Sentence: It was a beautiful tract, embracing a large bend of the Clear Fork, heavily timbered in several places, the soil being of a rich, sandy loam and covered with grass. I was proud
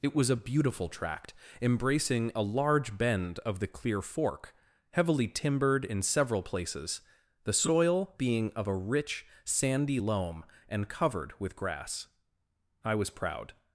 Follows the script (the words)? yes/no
yes